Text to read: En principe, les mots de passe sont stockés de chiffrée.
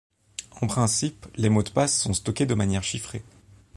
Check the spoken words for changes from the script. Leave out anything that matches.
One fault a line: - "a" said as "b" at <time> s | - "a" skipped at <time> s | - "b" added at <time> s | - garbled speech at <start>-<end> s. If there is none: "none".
- "manière" added at 2.5 s